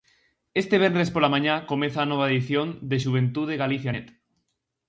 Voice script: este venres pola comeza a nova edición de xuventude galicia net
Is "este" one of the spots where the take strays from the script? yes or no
no